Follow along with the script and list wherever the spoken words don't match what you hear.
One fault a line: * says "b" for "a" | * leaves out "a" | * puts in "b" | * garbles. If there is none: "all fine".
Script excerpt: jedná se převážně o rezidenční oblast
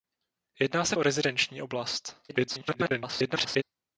* leaves out "převážně"
* garbles